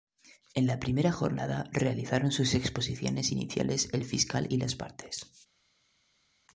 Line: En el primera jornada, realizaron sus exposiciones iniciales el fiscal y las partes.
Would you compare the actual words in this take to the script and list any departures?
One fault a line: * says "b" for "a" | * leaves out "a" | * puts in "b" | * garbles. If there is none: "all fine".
* says "la" for "el"